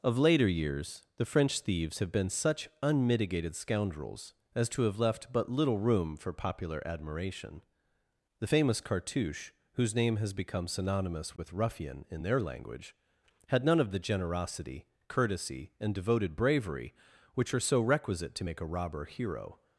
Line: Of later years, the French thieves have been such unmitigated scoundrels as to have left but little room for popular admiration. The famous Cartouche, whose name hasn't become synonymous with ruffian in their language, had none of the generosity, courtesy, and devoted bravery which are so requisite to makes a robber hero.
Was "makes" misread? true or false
true